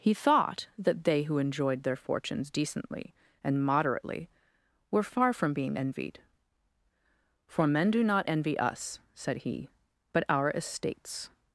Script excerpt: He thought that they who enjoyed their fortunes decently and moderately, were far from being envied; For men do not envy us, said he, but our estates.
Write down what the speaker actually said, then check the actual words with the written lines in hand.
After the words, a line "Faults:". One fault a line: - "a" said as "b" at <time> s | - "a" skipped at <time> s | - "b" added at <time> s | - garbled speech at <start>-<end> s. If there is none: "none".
He thought that they who enjoyed their fortunes decently and moderately, were far from being envied; For men do not envy us, said he, but our estates.
Faults:
none